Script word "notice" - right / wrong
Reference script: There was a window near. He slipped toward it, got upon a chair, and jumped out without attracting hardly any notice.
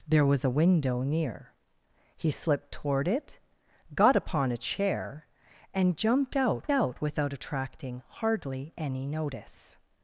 right